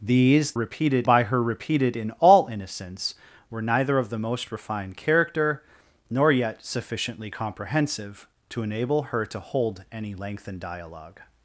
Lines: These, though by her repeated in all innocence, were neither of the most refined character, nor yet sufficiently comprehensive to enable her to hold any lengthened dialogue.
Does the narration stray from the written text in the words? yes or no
yes